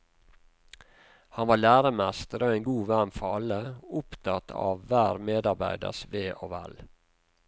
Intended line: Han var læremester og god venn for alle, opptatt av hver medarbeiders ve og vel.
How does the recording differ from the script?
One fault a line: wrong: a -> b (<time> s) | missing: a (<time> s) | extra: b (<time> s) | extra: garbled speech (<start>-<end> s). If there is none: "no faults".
extra: en (2.5 s)